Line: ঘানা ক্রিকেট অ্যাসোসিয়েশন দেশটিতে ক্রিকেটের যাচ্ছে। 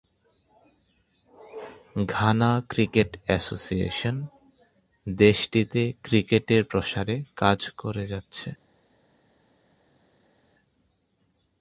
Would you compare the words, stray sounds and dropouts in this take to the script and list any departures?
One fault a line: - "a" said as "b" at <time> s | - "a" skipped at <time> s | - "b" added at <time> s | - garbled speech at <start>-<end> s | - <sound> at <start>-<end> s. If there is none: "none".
- "প্রসারে কাজ করে" added at 6.7 s